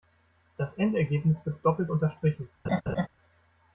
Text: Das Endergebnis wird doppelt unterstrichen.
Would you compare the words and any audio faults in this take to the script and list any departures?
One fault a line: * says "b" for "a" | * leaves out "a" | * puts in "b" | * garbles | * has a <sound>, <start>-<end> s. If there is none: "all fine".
* has a laugh, 2.6-3.1 s